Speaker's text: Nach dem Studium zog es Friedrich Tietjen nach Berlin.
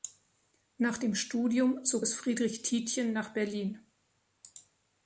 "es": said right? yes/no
yes